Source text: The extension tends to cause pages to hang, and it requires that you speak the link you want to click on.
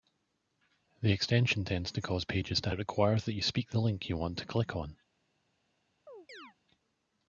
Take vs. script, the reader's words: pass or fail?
fail